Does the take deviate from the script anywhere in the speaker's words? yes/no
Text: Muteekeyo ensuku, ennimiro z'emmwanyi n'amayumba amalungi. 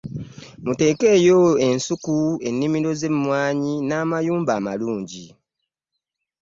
no